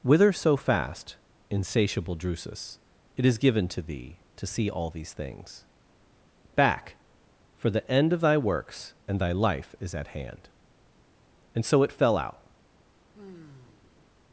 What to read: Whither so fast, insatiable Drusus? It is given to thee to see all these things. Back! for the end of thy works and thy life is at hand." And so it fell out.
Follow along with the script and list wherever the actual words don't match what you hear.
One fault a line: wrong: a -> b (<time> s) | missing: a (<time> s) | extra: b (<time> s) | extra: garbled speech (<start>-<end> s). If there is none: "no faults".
no faults